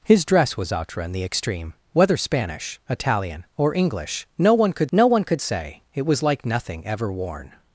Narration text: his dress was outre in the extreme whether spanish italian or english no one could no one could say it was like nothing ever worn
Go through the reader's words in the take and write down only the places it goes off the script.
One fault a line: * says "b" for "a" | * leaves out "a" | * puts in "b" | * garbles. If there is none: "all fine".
all fine